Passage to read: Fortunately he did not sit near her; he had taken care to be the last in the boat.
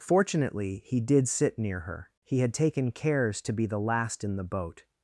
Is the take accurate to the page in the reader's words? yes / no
no